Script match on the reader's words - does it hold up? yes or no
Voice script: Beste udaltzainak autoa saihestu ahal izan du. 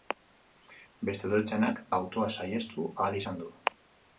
yes